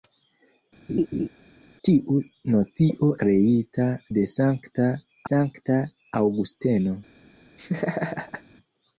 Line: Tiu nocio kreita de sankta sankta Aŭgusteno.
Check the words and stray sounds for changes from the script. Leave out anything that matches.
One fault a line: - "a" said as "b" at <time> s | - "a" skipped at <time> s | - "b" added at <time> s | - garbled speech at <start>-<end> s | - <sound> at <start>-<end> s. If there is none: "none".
- laugh at 0.9-1.3 s
- laugh at 7.6-8.4 s